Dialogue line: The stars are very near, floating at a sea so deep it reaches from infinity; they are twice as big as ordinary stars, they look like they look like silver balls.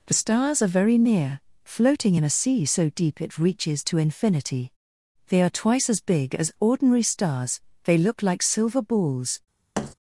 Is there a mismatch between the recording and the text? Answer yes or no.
yes